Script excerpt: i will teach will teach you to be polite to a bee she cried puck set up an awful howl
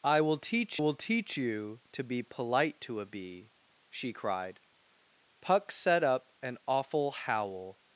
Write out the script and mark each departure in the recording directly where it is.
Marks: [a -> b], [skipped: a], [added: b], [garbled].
i will teach will teach you to be polite to a bee she cried puck set up an awful howl